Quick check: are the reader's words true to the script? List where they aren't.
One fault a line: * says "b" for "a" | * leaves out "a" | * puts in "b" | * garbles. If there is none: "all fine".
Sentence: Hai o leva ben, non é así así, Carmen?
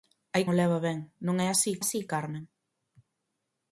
all fine